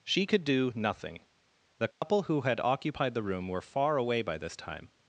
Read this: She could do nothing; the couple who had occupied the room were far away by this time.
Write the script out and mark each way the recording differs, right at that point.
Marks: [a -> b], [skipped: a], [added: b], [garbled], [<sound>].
She could do nothing; the couple [dropout] who had occupied the room were far away by this time.